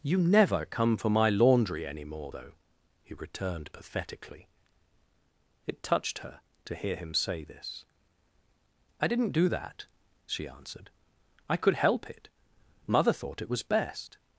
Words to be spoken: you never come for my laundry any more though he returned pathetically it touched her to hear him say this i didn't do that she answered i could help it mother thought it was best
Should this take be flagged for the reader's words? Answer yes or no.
no